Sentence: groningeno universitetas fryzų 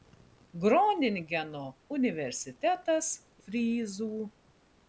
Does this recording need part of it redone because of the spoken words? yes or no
no